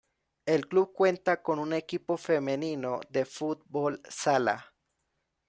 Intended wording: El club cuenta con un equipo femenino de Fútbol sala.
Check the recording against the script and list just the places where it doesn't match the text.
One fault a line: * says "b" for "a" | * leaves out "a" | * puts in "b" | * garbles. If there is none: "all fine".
all fine